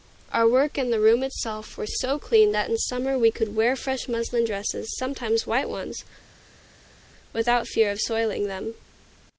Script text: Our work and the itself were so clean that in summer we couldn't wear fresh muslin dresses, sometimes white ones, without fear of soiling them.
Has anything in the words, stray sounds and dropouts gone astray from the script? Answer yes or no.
yes